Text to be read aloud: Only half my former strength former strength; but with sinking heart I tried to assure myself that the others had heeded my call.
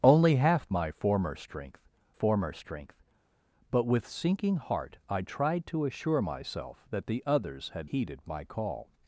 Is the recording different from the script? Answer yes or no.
no